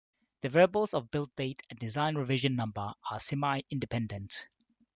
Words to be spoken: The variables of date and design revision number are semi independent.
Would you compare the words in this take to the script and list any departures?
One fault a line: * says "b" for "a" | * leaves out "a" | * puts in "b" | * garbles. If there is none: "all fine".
* puts in "build"